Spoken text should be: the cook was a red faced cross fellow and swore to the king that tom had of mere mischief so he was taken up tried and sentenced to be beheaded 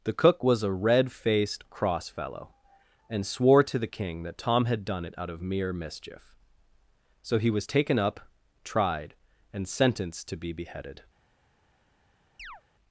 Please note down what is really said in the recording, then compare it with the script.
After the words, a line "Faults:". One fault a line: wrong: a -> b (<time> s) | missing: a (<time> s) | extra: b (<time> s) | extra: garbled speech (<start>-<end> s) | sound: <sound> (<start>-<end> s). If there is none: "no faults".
the cook was a red faced cross fellow and swore to the king that tom had done it out of mere mischief so he was taken up tried and sentenced to be beheaded
Faults:
extra: done it out (4.8 s)
sound: chirp (12.4-12.6 s)